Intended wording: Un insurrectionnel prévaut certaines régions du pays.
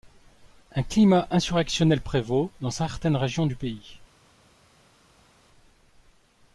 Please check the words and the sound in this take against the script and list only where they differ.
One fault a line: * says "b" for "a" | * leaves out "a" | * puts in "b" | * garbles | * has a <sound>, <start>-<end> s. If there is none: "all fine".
* puts in "climat"
* puts in "dans"